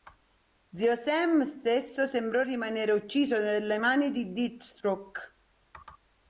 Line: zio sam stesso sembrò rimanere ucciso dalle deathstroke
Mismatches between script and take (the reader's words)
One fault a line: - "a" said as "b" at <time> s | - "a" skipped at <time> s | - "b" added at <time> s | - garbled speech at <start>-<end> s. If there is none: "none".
- "mani di" added at 3.8 s